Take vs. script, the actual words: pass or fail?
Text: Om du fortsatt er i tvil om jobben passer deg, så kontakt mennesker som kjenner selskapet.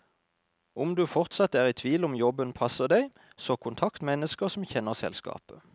pass